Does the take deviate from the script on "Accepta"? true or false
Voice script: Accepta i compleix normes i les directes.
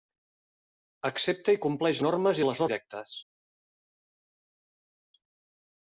false